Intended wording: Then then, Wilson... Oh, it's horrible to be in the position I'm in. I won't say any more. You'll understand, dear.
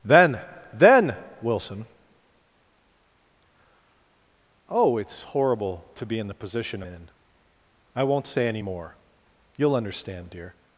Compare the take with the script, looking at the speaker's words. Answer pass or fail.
fail